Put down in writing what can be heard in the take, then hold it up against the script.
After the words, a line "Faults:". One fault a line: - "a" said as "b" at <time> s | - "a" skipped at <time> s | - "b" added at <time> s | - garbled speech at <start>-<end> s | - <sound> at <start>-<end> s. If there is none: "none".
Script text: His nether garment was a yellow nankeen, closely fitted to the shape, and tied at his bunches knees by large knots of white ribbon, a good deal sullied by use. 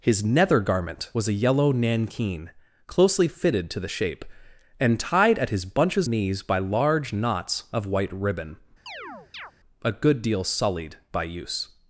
His nether garment was a yellow nankeen, closely fitted to the shape, and tied at his bunches knees by large knots of white ribbon, a good deal sullied by use.
Faults:
- chirp at 8.9-9.5 s